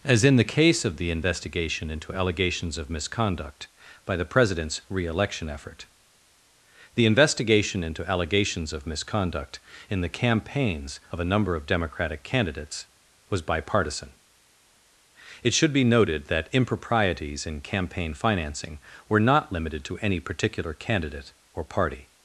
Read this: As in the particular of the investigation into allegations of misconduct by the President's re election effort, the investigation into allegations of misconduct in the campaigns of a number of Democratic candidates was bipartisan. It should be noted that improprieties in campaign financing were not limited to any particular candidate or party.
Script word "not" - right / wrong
right